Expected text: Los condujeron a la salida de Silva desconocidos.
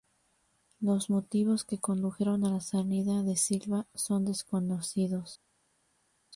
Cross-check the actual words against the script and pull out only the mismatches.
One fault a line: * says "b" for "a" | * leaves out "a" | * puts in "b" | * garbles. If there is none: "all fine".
* puts in "motivos que"
* puts in "son"